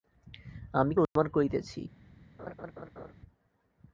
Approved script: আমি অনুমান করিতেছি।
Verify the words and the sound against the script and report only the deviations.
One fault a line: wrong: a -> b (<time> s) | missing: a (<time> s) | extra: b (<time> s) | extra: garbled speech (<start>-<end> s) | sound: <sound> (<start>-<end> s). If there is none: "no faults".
sound: dropout (1.0-1.2 s)
sound: laugh (2.4-3.1 s)